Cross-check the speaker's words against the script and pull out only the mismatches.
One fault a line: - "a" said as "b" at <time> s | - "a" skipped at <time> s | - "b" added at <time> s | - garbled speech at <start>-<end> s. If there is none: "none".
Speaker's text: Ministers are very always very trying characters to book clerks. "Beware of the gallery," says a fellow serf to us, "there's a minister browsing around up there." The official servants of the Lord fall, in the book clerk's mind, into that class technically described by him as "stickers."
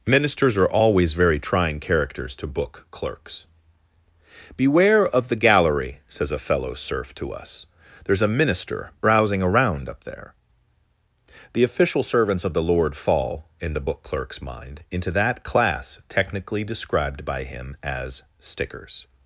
- "very" skipped at 0.7 s